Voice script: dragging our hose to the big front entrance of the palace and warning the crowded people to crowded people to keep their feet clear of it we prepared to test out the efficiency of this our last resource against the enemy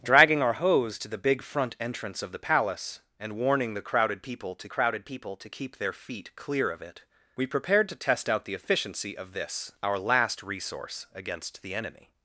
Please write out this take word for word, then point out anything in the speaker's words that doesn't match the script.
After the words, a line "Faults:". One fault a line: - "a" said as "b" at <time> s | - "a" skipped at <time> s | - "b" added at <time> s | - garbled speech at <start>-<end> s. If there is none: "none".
dragging our hose to the big front entrance of the palace and warning the crowded people to crowded people to keep their feet clear of it we prepared to test out the efficiency of this our last resource against the enemy
Faults:
none